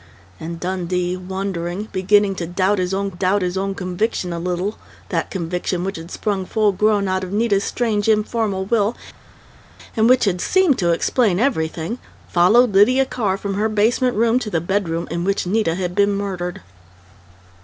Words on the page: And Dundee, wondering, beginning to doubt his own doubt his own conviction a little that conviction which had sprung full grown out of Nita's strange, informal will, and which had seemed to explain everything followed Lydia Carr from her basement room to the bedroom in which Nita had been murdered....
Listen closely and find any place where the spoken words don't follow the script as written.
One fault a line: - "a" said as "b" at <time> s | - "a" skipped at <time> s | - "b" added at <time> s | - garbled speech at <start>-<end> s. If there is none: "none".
none